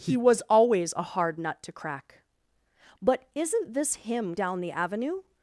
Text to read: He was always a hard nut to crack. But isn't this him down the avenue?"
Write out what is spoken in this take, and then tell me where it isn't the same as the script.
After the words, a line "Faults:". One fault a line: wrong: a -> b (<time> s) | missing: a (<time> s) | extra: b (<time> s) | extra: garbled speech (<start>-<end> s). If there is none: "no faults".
He was always a hard nut to crack. But isn't this him down the avenue?"
Faults:
no faults